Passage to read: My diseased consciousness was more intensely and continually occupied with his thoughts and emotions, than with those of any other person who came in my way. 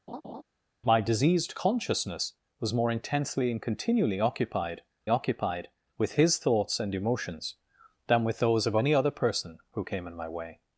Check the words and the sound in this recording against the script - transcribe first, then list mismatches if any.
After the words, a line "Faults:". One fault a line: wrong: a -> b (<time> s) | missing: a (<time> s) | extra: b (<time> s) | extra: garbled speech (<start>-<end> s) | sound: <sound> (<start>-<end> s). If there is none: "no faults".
My diseased consciousness was more intensely and continually occupied occupied with his thoughts and emotions, than with those of any other person who came in my way.
Faults:
sound: laugh (0.1-0.4 s)
extra: occupied (5.1 s)